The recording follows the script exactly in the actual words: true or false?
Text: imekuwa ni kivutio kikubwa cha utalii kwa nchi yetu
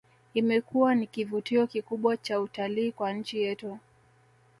true